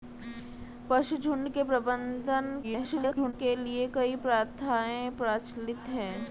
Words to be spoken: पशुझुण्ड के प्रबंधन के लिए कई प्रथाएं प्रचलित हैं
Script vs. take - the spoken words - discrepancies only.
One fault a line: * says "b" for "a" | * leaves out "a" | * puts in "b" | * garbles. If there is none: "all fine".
* garbles